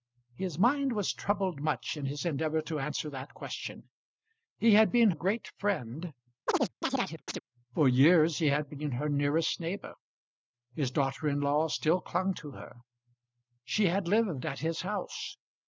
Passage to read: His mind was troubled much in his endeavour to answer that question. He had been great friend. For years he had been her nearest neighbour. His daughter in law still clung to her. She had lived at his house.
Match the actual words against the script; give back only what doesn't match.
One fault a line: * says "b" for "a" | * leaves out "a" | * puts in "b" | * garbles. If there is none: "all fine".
all fine